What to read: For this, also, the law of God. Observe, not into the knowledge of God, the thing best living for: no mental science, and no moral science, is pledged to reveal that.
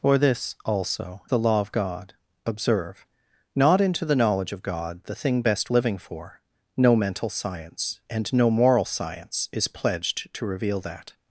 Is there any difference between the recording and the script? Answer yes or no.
no